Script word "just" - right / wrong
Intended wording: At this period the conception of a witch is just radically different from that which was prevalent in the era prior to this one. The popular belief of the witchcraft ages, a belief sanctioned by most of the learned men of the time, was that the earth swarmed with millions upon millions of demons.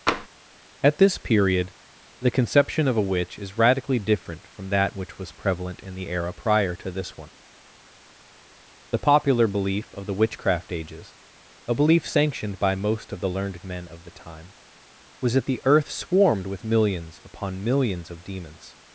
wrong